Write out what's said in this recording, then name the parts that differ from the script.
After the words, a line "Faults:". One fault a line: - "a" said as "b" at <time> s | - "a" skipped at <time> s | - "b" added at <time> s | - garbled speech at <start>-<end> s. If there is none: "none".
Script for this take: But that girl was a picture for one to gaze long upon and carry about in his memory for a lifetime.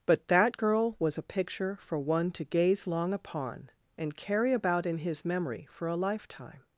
But that girl was a picture for one to gaze long upon and carry about in his memory for a lifetime.
Faults:
none